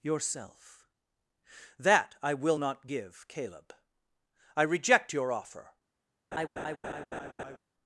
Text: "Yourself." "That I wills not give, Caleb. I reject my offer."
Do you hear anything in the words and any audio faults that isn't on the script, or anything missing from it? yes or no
yes